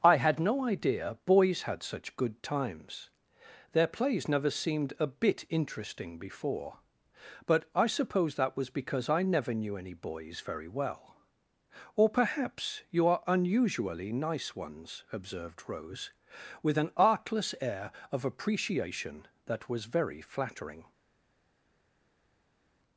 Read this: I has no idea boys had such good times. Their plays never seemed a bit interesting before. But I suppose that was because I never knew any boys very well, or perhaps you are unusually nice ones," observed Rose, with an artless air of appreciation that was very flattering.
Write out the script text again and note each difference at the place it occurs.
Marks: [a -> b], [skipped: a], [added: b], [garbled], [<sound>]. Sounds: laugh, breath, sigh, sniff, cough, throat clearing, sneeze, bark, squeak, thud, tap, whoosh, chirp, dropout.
I [has -> had] no idea boys had such good times. Their plays never seemed a bit interesting before. But I suppose that was because I never knew any boys very well, or perhaps you are unusually nice ones," observed Rose, with an artless air of appreciation that was very flattering.